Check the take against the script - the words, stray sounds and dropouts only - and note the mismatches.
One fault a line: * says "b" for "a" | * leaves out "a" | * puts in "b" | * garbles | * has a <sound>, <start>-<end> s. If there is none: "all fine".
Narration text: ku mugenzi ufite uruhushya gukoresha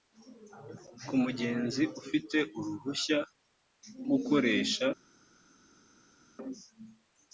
all fine